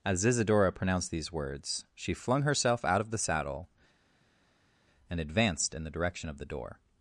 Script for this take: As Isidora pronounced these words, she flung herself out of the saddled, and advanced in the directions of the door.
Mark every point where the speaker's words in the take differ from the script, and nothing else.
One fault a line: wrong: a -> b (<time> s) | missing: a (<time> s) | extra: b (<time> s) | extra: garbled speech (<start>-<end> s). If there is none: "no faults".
wrong: saddled -> saddle (3.2 s)
wrong: directions -> direction (5.9 s)